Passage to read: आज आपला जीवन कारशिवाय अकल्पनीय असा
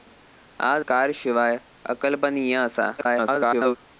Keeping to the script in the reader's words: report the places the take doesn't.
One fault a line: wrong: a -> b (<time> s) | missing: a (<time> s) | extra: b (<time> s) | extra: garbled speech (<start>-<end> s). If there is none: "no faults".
missing: आपला जीवन (0.8 s)
extra: garbled speech (3.0-3.8 s)